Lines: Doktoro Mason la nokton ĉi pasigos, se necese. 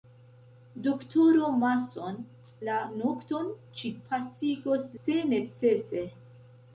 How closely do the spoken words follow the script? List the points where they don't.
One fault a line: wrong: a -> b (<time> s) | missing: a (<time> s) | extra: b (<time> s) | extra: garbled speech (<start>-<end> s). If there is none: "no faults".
no faults